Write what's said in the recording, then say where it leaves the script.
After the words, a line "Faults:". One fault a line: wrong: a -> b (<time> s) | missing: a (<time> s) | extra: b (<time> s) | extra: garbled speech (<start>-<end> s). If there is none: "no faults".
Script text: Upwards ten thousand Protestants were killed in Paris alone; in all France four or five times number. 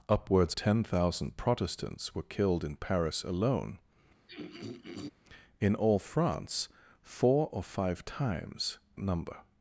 Upwards ten thousand Protestants were killed in Paris alone; in all France four or five times number.
Faults:
no faults